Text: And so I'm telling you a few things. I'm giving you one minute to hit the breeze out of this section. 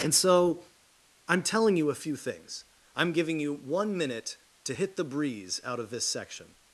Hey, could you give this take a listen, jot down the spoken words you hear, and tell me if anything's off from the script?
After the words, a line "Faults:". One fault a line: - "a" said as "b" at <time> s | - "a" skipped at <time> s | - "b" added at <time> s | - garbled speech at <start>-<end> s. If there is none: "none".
And so I'm telling you a few things. I'm giving you one minute to hit the breeze out of this section.
Faults:
none